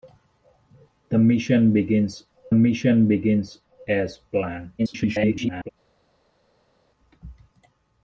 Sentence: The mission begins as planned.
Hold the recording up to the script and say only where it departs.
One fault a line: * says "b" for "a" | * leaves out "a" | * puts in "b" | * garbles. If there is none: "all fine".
* puts in "mission begins"
* garbles